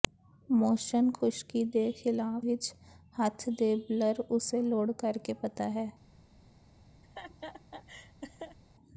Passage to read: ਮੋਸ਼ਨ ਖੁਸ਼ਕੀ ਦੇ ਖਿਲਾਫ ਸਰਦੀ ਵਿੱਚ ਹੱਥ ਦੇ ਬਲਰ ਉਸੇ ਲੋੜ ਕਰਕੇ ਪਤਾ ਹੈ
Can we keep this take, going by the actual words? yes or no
no